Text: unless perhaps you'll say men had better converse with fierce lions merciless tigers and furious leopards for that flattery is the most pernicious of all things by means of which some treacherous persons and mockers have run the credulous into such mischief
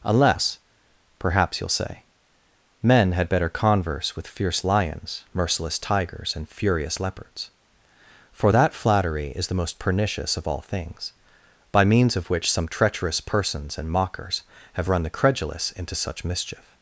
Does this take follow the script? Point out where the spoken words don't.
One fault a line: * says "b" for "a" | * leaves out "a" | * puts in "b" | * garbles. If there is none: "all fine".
all fine